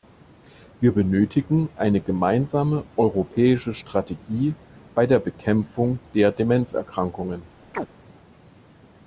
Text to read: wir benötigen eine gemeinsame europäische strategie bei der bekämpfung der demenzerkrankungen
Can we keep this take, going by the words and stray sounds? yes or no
no